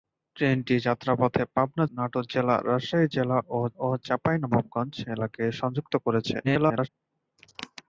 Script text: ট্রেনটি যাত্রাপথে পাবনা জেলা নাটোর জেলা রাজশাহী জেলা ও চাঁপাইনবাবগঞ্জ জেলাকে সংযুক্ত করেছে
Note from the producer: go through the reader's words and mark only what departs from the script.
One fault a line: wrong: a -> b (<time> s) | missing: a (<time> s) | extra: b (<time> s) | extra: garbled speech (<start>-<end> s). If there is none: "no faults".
missing: জেলা (1.9 s)
extra: ও (3.8 s)
extra: garbled speech (6.4-6.9 s)